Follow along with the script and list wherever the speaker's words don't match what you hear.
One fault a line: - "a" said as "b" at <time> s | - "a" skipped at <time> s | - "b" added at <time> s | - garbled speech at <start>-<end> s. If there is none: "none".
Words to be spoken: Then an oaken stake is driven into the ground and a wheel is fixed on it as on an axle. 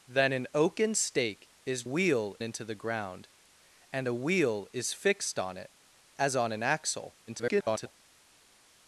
- "driven" said as "wheel" at 1.8 s
- garbled speech at 7.3-8.0 s